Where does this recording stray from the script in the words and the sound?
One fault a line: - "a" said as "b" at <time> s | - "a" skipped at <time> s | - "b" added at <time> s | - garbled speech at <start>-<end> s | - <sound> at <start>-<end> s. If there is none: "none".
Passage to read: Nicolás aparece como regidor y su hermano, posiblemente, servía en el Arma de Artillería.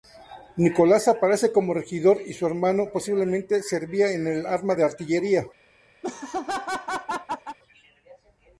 - laugh at 6.0-7.6 s